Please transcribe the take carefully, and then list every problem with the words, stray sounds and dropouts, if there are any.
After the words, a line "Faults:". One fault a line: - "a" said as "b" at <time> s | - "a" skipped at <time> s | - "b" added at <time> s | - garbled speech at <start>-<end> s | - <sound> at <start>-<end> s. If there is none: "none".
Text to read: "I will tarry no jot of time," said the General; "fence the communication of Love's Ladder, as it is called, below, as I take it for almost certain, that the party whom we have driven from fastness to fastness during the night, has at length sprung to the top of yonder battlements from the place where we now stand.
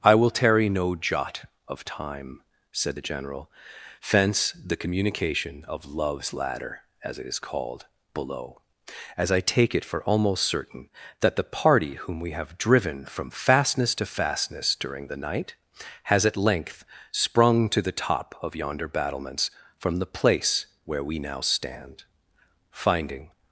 "I will tarry no jot of time," said the General; "fence the communication of Love's Ladder, as it is called, below, as I take it for almost certain, that the party whom we have driven from fastness to fastness during the night, has at length sprung to the top of yonder battlements from the place where we now stand. Finding
Faults:
- "Finding" added at 22.7 s